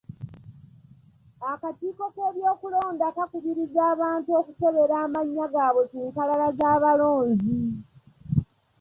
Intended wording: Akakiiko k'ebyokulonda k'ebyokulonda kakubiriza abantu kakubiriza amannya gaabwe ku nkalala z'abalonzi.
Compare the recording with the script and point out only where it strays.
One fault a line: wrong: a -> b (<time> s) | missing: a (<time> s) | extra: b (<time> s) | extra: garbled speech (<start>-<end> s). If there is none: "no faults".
missing: k'ebyokulonda (3.1 s)
wrong: kakubiriza -> okukebera (4.4 s)